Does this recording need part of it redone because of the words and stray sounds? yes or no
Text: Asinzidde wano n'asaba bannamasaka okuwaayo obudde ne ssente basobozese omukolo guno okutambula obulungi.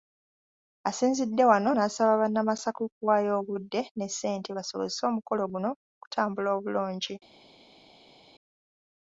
no